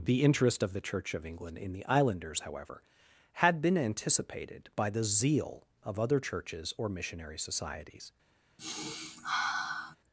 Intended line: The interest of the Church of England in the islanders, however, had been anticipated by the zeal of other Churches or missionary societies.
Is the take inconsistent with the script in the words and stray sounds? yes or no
yes